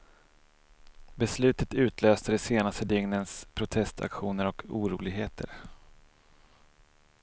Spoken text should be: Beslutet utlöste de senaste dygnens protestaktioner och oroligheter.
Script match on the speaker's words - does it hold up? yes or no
yes